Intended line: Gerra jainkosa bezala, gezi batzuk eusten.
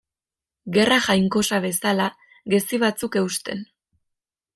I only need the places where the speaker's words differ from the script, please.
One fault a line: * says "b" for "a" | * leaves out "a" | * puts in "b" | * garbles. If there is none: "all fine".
all fine